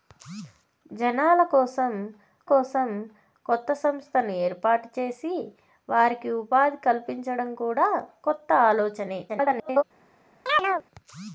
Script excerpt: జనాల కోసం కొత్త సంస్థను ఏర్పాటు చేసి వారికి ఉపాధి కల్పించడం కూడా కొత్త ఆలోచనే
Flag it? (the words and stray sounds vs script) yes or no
yes